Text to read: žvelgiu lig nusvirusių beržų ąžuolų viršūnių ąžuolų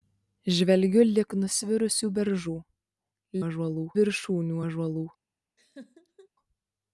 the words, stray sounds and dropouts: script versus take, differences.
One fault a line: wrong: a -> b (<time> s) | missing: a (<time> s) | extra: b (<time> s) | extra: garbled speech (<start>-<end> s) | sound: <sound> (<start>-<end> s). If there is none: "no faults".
sound: laugh (5.6-6.3 s)